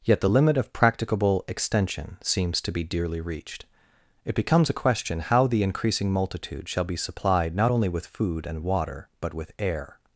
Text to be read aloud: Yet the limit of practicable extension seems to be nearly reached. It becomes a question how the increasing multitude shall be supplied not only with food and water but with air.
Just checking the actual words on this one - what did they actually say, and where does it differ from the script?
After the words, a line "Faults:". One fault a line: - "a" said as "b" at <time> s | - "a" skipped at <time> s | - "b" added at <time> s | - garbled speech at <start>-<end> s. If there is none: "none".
Yet the limit of practicable extension seems to be dearly reached. It becomes a question how the increasing multitude shall be supplied not only with food and water but with air.
Faults:
- "nearly" said as "dearly" at 2.8 s